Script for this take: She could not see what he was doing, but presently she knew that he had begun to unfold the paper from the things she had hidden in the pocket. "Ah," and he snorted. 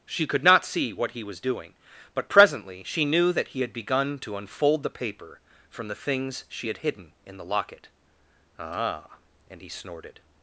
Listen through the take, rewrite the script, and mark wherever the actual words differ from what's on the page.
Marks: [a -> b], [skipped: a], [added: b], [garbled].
She could not see what he was doing, but presently she knew that he had begun to unfold the paper from the things she had hidden in the [pocket. -> locket] "Ah," and he snorted.